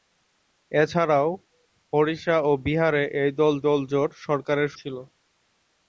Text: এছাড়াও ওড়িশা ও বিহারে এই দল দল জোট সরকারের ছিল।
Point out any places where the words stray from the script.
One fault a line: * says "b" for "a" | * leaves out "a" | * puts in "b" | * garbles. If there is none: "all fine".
all fine